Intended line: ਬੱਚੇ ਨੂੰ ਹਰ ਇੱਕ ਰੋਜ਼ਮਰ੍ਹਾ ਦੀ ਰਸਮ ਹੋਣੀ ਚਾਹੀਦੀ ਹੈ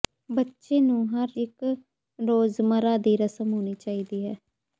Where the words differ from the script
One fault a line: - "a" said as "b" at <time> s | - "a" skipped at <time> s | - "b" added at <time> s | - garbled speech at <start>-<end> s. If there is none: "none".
none